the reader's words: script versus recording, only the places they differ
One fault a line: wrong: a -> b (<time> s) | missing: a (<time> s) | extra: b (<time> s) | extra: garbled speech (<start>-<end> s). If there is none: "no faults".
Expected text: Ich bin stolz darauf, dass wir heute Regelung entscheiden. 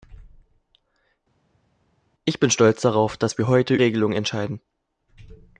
no faults